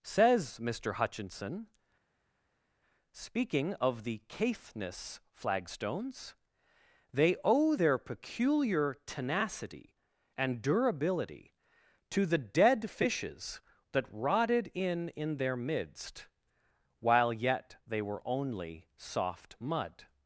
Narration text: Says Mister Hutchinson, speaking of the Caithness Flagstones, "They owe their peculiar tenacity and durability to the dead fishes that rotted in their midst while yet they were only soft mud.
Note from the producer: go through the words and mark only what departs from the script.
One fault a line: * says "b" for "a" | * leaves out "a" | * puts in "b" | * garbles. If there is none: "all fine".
* puts in "in"